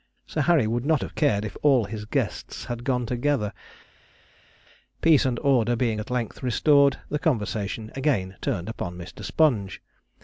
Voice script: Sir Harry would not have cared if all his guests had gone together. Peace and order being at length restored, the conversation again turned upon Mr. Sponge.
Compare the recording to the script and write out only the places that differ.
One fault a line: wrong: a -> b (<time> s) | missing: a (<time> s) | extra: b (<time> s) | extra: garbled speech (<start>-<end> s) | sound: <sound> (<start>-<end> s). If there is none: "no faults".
no faults